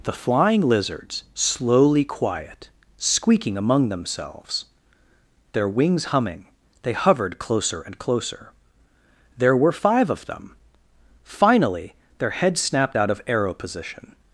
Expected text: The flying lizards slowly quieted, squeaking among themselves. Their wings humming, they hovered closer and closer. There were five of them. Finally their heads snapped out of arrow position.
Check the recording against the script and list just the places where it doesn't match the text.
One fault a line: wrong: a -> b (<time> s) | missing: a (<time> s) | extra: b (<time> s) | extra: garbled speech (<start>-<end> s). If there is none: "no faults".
wrong: quieted -> quiet (2.0 s)